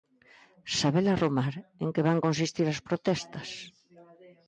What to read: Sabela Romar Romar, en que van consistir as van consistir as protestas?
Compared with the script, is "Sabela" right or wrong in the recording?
right